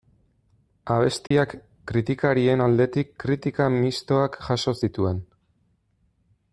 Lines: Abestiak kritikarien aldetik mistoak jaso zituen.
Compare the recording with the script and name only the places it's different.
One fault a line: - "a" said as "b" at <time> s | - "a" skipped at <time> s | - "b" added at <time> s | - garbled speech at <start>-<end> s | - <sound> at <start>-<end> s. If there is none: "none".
- dropout at 1.3-1.3 s
- "kritika" added at 3.2 s